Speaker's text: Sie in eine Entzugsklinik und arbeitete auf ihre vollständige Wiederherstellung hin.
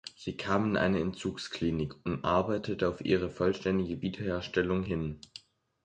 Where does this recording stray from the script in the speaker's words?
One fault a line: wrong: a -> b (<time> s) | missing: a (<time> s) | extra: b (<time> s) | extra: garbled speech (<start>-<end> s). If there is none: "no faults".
extra: kam (0.3 s)